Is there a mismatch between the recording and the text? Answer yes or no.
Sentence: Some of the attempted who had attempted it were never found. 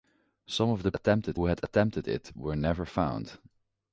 no